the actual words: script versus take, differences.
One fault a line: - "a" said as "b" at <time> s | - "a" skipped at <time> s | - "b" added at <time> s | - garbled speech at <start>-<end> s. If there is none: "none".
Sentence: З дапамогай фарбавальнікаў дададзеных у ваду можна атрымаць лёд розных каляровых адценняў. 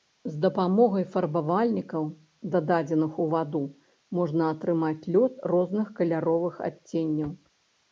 none